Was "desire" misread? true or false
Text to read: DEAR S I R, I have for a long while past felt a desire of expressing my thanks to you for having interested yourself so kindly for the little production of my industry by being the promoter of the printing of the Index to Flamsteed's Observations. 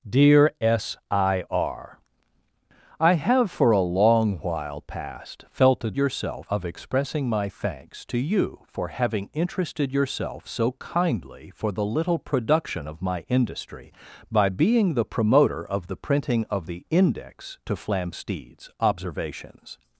true